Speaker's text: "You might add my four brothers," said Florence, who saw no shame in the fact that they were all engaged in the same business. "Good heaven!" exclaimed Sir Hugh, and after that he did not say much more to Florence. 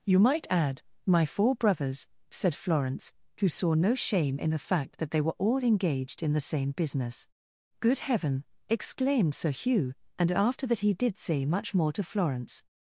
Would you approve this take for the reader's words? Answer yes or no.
no